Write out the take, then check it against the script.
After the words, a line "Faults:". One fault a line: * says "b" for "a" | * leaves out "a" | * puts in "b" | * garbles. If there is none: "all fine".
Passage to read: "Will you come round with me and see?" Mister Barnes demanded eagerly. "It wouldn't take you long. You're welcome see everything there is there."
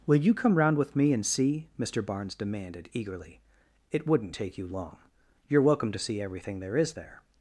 "Will you come round with me and see?" Mister Barnes demanded eagerly. "It wouldn't take you long. You're welcome to see everything there is there."
Faults:
* puts in "to"